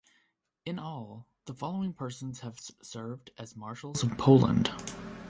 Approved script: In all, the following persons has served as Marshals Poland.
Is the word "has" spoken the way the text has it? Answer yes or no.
no